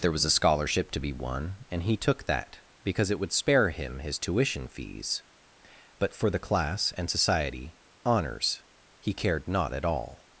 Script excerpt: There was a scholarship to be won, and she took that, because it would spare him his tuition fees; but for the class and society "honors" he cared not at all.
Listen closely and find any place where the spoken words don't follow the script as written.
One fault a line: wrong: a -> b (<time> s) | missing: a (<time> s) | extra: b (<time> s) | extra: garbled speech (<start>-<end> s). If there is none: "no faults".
wrong: she -> he (1.8 s)